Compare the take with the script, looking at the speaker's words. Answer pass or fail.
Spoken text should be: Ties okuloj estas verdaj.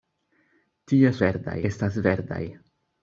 fail